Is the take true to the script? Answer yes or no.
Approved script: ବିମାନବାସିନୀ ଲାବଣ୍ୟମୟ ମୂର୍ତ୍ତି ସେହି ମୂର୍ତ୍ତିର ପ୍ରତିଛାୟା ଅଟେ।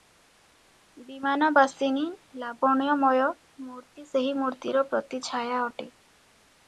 yes